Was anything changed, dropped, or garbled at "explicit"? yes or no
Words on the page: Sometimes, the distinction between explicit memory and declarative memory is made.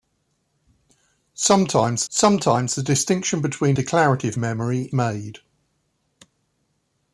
yes